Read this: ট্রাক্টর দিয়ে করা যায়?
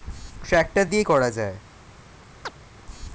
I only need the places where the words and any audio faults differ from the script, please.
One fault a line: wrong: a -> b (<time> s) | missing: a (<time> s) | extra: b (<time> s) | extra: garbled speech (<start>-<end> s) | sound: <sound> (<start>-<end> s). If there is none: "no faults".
sound: chirp (2.4-2.5 s)